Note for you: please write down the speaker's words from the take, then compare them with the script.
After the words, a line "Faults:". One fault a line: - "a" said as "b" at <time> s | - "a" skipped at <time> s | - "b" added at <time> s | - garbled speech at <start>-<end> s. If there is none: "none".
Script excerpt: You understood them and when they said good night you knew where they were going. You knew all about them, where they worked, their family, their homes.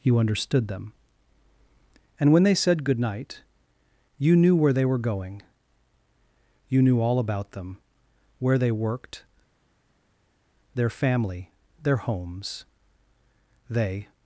You understood them and when they said good night you knew where they were going. You knew all about them, where they worked, their family, their homes. They
Faults:
- "They" added at 13.7 s